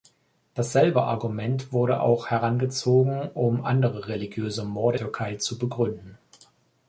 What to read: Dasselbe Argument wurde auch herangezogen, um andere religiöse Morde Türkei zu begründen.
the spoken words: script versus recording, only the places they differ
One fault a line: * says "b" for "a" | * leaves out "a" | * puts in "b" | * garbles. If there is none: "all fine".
all fine